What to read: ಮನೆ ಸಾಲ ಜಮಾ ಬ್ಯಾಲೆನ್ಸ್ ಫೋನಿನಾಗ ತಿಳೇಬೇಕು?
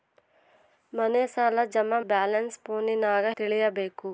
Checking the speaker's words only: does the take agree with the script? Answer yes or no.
yes